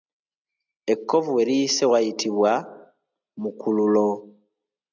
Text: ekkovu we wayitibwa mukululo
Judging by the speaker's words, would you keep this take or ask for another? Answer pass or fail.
fail